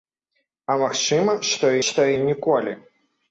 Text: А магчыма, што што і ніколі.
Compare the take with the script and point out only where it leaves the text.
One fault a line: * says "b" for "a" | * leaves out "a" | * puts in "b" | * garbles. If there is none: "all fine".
all fine